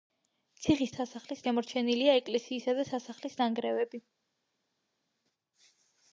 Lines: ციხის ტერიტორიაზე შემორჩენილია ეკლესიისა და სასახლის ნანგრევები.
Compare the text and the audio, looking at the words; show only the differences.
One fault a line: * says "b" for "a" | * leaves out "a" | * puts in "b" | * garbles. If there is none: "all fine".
* says "სასახლის" for "ტერიტორიაზე"